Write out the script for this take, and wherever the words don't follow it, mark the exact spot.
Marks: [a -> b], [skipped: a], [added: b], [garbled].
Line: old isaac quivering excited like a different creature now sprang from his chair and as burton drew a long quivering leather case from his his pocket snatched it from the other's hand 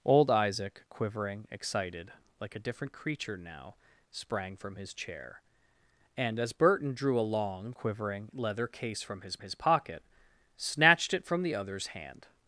old isaac quivering excited like a different creature now sprang from his chair and as burton drew a long quivering leather case from his his pocket snatched it from the other's hand